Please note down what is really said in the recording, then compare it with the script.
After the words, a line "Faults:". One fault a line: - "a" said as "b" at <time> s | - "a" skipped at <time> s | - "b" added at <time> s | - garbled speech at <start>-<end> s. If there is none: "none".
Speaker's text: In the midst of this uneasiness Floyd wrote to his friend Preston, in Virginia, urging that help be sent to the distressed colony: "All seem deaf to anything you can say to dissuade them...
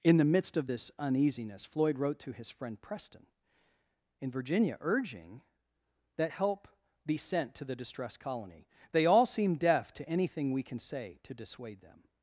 In the midst of this uneasiness Floyd wrote to his friend Preston, in Virginia, urging that help be sent to the distressed colony: "They all seem deaf to anything we can say to dissuade them...
Faults:
- "They" added at 8.9 s
- "you" said as "we" at 10.5 s